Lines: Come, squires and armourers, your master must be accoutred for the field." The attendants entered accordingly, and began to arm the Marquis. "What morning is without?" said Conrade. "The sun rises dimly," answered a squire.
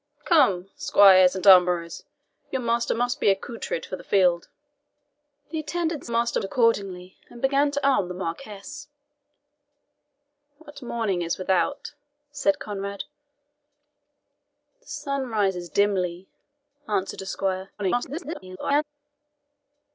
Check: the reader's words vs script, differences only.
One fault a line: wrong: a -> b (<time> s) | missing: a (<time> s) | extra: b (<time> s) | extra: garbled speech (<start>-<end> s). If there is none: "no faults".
wrong: entered -> master (6.1 s)
extra: garbled speech (17.8-18.8 s)